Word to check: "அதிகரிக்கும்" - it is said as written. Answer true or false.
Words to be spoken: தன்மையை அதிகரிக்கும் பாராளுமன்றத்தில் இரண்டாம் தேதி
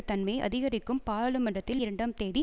true